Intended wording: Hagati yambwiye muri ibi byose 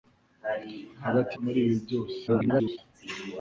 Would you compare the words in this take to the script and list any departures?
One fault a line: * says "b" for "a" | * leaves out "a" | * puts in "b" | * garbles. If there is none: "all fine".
* leaves out "yambwiye"
* garbles